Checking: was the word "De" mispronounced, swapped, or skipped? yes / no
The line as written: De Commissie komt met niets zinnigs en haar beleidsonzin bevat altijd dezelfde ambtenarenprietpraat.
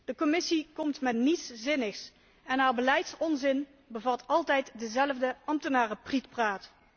no